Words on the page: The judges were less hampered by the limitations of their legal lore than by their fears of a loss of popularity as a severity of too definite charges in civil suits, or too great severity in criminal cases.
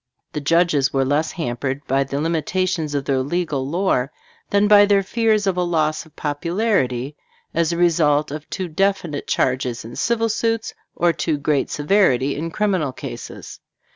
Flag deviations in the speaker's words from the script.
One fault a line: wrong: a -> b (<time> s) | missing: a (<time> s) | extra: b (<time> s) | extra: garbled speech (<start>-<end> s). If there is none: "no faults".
wrong: severity -> result (7.8 s)